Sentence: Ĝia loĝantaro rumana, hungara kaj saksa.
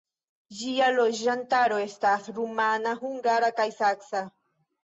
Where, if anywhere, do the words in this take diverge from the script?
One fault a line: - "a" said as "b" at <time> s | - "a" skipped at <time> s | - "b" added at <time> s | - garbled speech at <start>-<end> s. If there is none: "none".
- "estas" added at 1.8 s